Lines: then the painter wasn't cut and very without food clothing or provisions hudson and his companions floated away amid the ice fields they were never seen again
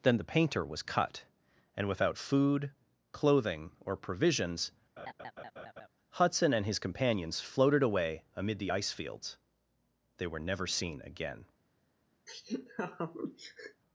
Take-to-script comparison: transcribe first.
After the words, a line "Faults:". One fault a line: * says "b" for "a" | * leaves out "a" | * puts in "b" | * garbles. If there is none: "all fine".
then the painter was cut and without food clothing or provisions hudson and his companions floated away amid the ice fields they were never seen again
Faults:
* says "was" for "wasn't"
* leaves out "very"